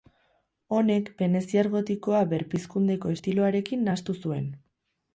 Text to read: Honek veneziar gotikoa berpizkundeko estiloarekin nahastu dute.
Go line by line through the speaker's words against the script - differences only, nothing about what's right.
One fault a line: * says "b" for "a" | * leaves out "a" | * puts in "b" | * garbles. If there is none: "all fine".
* says "zuen" for "dute"